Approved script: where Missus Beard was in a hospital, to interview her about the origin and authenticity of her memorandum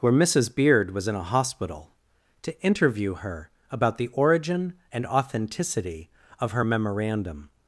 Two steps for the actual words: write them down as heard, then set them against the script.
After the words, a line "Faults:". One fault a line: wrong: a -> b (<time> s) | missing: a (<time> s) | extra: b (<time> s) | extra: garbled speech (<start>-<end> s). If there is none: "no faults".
where Missus Beard was in a hospital, to interview her about the origin and authenticity of her memorandum
Faults:
no faults